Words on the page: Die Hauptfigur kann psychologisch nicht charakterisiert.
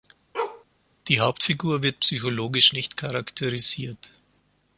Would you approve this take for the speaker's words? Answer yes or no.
no